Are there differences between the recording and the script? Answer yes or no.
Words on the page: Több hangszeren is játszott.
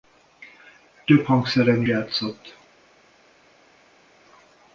yes